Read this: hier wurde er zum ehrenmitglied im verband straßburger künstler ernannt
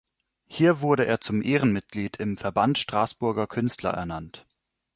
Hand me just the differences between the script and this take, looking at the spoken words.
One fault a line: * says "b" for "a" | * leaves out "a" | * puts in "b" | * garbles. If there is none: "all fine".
all fine